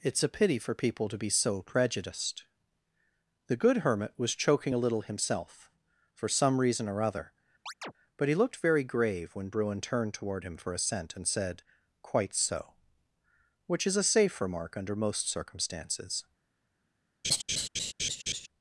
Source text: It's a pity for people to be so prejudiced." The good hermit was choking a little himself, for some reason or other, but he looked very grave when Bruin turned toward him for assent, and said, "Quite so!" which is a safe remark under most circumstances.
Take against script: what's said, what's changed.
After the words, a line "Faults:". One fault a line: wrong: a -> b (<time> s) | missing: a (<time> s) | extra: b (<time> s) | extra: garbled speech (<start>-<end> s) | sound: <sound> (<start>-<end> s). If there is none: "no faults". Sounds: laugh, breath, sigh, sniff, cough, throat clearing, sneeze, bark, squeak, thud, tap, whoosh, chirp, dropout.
It's a pity for people to be so prejudiced." The good hermit was choking a little himself, for some reason or other, but he looked very grave when Bruin turned toward him for assent, and said, "Quite so!" which is a safe remark under most circumstances.
Faults:
sound: chirp (7.7-7.9 s)
sound: laugh (17.2-18.5 s)